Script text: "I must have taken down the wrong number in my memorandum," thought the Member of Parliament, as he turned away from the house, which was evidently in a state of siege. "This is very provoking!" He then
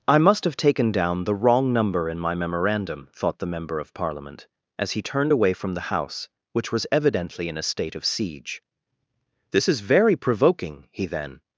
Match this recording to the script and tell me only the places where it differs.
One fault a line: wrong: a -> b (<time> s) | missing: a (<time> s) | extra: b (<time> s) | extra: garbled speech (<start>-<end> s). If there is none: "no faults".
no faults